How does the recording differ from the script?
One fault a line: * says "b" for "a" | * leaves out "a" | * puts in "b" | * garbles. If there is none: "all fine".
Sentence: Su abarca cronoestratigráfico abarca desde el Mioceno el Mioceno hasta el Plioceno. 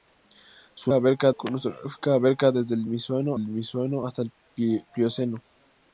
all fine